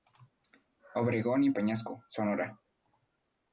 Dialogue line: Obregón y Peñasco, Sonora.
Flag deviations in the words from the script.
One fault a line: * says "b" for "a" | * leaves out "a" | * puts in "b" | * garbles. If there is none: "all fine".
all fine